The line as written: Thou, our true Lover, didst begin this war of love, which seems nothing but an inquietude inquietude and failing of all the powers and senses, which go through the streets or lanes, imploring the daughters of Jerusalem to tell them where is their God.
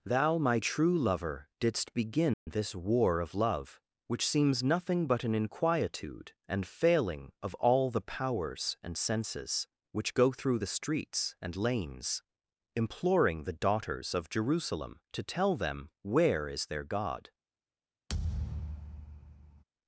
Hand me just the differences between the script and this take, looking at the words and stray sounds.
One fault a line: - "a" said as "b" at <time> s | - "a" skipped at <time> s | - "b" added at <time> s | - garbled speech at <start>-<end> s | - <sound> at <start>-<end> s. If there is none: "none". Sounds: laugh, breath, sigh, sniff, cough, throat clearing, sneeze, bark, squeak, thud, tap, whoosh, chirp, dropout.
- "our" said as "my" at 0.4 s
- dropout at 2.3-2.5 s
- "inquietude" skipped at 6.3 s
- "or" said as "and" at 11.4 s
- thud at 18.1-19.6 s